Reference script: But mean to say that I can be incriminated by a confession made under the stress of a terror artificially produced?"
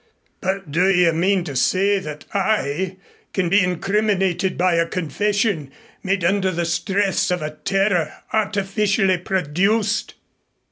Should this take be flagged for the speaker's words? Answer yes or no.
yes